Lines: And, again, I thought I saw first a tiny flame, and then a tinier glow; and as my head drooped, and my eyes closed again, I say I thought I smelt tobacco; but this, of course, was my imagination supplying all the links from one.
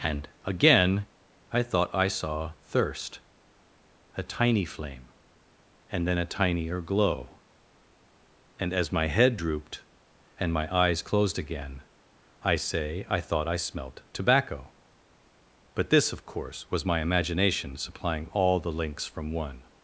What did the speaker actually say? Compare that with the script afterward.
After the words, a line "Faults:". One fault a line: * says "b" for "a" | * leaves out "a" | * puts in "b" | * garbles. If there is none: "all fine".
And, again, I thought I saw thirst a tiny flame, and then a tinier glow; and as my head drooped, and my eyes closed again, I say I thought I smelt tobacco; but this, of course, was my imagination supplying all the links from one.
Faults:
* says "thirst" for "first"